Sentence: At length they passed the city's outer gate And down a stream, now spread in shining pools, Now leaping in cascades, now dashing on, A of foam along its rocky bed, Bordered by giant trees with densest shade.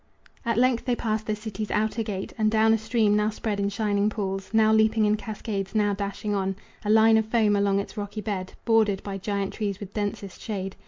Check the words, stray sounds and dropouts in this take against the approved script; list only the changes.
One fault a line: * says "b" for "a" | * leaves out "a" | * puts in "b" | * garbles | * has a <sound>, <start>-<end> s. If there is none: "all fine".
* puts in "line"